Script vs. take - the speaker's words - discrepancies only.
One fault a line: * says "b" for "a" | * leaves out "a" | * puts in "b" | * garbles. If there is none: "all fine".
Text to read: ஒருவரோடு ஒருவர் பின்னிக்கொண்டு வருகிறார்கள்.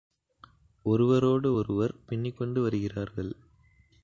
all fine